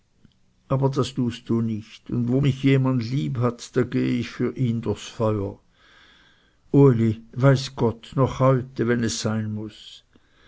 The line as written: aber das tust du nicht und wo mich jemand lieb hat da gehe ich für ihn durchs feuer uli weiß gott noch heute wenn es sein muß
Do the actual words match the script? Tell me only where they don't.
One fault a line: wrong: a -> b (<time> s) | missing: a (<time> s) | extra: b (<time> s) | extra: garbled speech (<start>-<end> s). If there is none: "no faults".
no faults